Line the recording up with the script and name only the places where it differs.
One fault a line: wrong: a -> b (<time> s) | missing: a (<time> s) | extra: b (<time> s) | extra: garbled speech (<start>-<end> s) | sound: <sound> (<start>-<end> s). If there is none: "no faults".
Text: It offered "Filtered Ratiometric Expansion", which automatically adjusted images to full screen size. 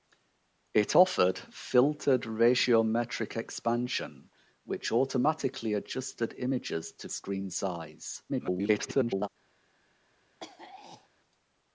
missing: full (7.1 s)
extra: garbled speech (8.3-9.3 s)
sound: throat clearing (10.4-11.1 s)